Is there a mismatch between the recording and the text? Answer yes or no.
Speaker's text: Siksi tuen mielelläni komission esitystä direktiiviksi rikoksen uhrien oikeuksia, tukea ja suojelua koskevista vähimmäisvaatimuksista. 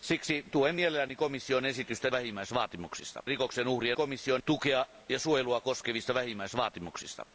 yes